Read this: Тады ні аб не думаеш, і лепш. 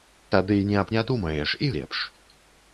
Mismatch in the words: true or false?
false